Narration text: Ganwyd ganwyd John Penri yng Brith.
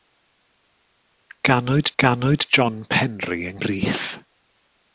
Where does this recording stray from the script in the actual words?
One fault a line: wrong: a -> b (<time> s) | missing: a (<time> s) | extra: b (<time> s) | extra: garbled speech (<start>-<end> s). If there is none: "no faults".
no faults